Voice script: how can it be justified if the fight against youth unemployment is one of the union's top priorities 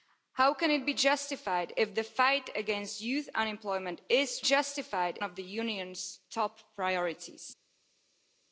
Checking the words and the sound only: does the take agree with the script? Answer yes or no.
no